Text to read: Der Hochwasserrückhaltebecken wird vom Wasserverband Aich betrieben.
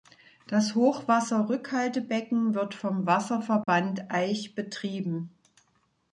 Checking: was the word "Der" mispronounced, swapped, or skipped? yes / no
yes